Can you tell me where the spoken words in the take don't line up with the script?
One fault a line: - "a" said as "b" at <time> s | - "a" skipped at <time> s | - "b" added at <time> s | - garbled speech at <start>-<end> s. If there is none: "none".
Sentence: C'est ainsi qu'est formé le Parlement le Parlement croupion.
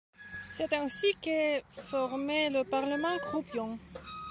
- "le Parlement" skipped at 3.2 s